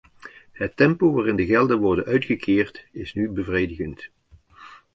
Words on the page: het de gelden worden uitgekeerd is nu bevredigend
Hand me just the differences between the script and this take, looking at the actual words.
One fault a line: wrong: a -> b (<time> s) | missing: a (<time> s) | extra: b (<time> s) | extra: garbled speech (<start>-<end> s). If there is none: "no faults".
extra: tempo waarin (0.8 s)